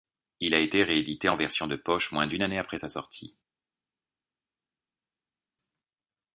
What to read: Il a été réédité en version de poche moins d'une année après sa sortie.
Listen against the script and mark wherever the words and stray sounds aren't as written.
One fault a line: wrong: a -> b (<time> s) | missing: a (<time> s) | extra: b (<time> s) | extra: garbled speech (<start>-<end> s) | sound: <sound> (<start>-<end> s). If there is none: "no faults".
no faults